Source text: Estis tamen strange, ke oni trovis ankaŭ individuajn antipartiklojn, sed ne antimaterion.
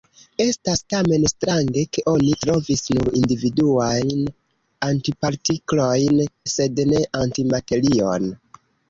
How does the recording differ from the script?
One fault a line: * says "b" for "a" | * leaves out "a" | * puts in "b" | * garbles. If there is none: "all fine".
* says "Estas" for "Estis"
* says "nur" for "ankaŭ"